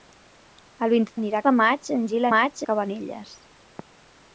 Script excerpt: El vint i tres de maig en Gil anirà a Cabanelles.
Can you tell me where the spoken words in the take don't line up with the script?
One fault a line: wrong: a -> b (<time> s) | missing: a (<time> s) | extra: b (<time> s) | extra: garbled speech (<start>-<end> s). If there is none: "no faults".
wrong: tres -> anirà (1.2 s)
wrong: anirà -> maig (2.3 s)